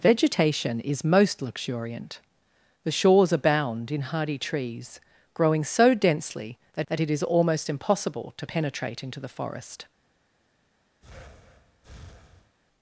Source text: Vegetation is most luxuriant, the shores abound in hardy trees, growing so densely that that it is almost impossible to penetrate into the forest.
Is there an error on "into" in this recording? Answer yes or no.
no